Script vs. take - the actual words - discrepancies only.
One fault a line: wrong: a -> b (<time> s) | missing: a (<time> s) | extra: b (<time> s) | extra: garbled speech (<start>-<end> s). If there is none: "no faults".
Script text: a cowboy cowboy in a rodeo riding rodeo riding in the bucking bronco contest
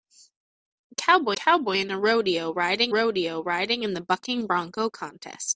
no faults